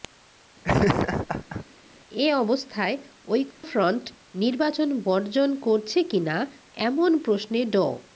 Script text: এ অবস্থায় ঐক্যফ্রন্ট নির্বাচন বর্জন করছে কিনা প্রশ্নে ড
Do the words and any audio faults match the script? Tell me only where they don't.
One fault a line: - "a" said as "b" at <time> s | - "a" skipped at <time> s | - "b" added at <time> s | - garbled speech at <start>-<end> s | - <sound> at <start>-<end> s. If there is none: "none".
- laugh at 0.6-1.6 s
- dropout at 3.5-3.6 s
- "এমন" added at 6.9 s